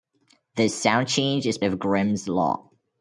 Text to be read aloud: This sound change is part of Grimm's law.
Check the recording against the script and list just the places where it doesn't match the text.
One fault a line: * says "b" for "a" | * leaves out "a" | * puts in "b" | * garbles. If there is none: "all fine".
* leaves out "part"